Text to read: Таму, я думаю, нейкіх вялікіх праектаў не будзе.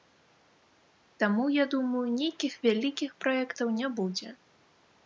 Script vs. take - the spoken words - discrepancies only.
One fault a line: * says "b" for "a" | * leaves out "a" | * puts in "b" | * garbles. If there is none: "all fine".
all fine